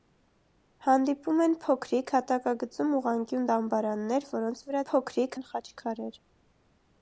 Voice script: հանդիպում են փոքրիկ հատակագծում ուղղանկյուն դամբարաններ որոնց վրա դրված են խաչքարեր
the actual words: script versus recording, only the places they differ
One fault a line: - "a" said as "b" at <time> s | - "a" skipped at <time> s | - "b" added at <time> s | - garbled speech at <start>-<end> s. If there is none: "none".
- "դրված" said as "փոքրիկ" at 4.9 s